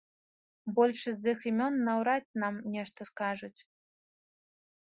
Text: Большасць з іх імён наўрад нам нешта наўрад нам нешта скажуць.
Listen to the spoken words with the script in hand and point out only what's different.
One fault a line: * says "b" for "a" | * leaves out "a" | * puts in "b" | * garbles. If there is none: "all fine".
* leaves out "наўрад нам нешта"